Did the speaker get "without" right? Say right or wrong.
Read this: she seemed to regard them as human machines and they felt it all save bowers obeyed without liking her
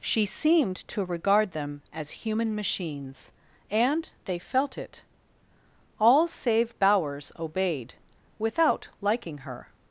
right